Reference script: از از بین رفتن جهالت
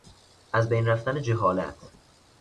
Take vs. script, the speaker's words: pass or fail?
fail